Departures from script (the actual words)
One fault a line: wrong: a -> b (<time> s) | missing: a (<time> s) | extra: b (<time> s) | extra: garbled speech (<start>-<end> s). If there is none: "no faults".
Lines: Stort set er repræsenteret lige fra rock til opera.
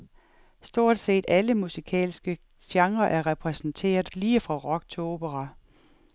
extra: alle musikalske genrer (1.3 s)